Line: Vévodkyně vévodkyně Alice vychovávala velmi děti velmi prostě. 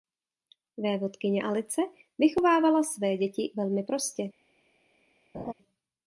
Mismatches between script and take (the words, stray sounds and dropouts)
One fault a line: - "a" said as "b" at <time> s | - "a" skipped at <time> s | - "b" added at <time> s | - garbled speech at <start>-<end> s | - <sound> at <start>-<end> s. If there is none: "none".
- "vévodkyně" skipped at 1.4 s
- "velmi" said as "své" at 2.8 s
- laugh at 5.3-5.5 s